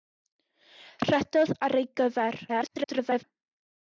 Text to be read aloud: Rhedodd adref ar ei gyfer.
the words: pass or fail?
fail